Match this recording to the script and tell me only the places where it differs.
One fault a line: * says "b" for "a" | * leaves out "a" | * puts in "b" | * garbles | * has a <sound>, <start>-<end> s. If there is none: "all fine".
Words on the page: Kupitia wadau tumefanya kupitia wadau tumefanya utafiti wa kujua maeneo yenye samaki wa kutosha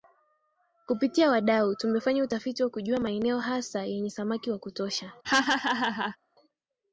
* leaves out "kupitia wadau tumefanya"
* puts in "hasa"
* has a laugh, 5.2-6.2 s